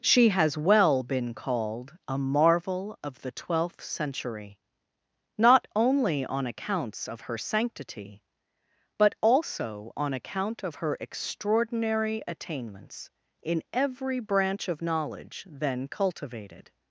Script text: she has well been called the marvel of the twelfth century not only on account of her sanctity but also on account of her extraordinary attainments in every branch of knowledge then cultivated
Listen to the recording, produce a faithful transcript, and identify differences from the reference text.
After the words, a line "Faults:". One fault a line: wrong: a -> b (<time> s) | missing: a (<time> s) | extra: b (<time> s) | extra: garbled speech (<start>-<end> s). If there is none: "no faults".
she has well been called a marvel of the twelfth century not only on accounts of her sanctity but also on account of her extraordinary attainments in every branch of knowledge then cultivated
Faults:
wrong: the -> a (2.1 s)
wrong: account -> accounts (6.5 s)